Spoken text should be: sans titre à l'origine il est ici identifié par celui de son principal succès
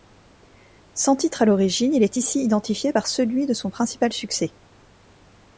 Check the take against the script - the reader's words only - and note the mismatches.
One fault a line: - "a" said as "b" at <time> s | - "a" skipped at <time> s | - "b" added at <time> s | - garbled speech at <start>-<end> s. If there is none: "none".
none